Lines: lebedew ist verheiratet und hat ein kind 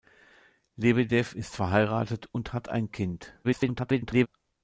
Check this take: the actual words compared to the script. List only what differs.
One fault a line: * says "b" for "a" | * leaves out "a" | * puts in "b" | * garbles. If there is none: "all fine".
* garbles